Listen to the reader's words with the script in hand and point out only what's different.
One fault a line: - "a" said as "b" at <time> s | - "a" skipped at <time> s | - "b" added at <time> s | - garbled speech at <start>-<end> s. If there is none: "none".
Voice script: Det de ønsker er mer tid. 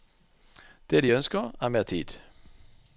none